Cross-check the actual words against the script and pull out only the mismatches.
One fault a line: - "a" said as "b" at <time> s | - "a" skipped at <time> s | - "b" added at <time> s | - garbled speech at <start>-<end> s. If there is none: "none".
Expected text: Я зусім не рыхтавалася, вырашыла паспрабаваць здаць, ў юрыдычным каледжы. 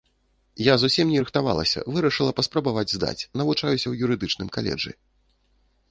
- "навучаюся" added at 3.4 s